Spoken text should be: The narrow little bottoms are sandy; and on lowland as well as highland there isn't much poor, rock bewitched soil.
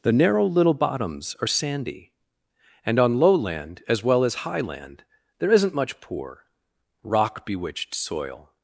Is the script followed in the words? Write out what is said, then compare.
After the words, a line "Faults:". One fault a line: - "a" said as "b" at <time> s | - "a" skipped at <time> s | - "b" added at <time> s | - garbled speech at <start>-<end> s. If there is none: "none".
The narrow little bottoms are sandy; and on lowland as well as highland there isn't much poor, rock bewitched soil.
Faults:
none